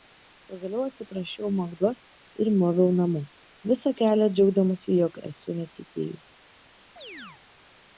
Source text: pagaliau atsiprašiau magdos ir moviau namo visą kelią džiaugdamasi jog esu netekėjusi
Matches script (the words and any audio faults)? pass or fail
fail